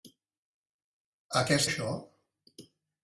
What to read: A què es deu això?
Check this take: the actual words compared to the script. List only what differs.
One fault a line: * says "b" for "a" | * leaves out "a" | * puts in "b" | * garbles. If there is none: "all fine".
* leaves out "deu"